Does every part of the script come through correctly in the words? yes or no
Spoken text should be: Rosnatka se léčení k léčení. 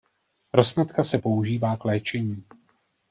no